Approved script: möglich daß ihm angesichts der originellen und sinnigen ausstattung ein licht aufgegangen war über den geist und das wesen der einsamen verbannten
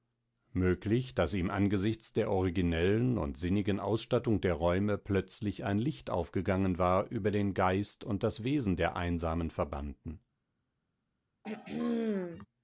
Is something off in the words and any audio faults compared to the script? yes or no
yes